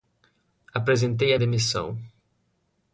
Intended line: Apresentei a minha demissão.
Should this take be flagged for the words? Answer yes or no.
yes